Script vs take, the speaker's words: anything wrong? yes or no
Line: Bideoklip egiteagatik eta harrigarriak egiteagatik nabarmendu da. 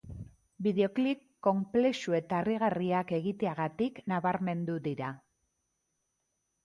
yes